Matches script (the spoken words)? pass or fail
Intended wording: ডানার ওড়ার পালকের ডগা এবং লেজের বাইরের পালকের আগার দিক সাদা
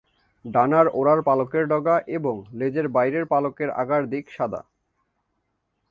pass